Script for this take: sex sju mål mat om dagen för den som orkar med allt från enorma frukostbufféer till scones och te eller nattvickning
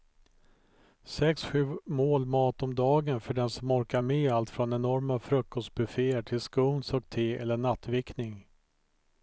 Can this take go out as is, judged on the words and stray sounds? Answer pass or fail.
pass